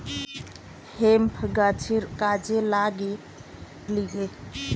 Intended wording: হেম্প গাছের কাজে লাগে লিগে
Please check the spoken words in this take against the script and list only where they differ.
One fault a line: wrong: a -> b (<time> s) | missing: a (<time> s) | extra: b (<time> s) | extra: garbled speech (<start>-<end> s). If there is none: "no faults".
no faults